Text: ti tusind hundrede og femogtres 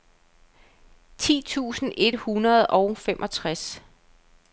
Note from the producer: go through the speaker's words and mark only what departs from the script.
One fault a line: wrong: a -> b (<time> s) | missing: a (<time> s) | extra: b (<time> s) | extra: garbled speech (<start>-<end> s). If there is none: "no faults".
extra: et (2.0 s)